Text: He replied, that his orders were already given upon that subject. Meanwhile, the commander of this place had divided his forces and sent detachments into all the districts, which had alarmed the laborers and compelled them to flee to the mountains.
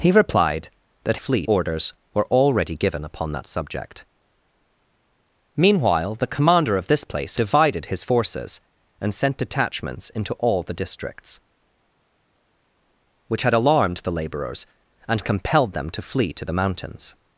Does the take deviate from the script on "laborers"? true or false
false